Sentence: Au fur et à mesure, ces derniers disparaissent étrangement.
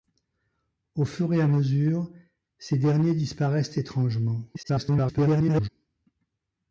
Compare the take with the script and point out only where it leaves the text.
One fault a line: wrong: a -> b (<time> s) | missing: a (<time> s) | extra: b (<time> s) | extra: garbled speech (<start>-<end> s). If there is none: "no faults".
extra: garbled speech (4.5-5.7 s)